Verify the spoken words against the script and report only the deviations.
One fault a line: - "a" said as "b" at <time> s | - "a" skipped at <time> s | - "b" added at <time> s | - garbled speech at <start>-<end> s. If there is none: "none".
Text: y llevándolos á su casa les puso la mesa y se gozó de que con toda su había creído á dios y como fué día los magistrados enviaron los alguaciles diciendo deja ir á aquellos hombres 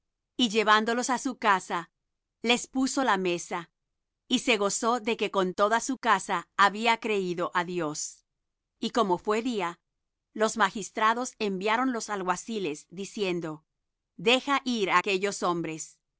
- "casa" added at 6.0 s